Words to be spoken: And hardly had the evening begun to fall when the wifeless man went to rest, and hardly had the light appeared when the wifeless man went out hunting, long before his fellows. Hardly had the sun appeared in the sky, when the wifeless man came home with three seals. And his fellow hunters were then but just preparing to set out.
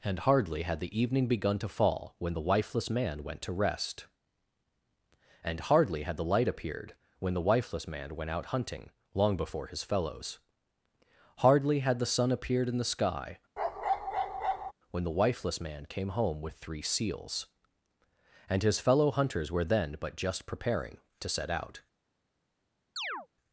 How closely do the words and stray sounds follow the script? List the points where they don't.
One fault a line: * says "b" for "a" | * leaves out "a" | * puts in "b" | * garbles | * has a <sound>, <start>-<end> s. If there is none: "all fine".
* has a bark, 13.6-14.7 s
* has a chirp, 23.0-23.3 s